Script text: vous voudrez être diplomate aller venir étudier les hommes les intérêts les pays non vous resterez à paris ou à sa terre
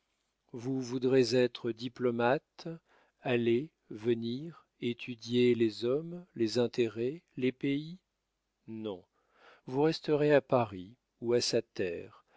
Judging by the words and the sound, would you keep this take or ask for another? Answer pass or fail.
pass